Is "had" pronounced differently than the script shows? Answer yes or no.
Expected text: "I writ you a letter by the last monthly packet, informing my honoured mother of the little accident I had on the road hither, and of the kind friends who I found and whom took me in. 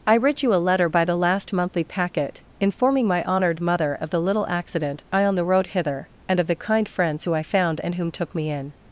yes